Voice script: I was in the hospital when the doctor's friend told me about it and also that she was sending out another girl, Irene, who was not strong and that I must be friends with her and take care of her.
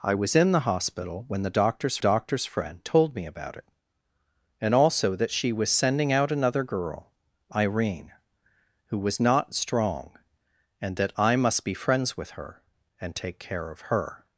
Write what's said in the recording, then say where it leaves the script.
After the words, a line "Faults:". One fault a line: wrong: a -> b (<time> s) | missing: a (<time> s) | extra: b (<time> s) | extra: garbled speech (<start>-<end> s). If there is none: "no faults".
I was in the hospital when the doctor's doctor's friend told me about it and also that she was sending out another girl, Irene, who was not strong and that I must be friends with her and take care of her.
Faults:
extra: doctor's (2.0 s)